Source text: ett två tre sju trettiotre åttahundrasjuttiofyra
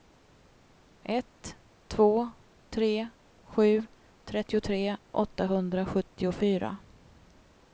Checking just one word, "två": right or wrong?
right